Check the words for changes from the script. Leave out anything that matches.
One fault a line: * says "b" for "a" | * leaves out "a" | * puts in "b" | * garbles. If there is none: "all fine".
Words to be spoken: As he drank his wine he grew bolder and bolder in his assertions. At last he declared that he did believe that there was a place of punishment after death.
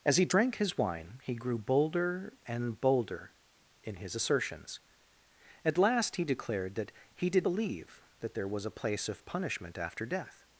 all fine